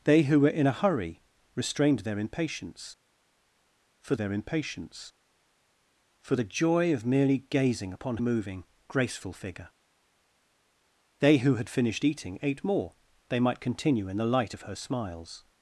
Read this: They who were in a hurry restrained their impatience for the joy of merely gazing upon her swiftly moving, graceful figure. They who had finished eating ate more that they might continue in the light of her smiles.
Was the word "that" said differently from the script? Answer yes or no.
yes